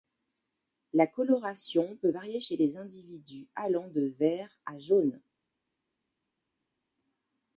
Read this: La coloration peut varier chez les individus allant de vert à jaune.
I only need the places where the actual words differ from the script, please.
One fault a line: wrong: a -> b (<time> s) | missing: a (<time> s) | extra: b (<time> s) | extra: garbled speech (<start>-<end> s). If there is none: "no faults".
no faults